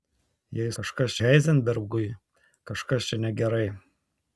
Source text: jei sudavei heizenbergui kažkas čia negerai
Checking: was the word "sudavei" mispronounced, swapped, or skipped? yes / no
yes